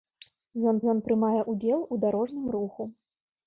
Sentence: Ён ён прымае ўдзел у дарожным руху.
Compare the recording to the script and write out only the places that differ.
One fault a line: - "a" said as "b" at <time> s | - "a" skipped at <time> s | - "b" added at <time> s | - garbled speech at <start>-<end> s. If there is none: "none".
none